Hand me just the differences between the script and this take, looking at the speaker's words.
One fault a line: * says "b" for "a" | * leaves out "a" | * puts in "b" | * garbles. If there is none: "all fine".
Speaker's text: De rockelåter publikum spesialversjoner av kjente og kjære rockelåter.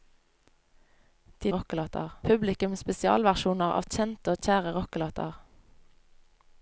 all fine